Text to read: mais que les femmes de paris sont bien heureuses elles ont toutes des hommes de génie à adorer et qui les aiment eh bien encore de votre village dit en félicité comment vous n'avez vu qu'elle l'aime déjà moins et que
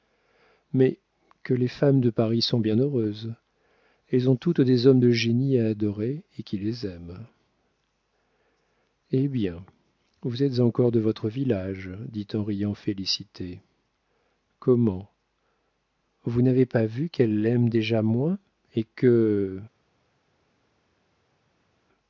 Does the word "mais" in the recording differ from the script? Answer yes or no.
no